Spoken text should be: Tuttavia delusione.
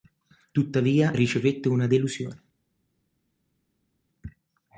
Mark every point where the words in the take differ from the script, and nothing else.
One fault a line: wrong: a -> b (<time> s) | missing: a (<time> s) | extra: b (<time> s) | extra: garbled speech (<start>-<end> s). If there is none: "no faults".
extra: ricevette una (1.1 s)